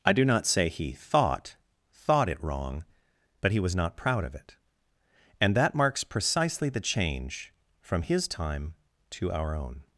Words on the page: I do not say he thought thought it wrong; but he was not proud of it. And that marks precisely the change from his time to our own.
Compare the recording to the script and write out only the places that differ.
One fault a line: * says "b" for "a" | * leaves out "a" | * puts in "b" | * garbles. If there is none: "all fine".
all fine